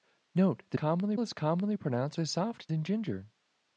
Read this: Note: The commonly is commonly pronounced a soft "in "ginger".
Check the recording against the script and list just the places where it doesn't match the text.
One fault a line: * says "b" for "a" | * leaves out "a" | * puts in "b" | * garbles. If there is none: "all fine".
all fine